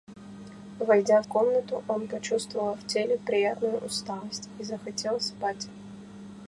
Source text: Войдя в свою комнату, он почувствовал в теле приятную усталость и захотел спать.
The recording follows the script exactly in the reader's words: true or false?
false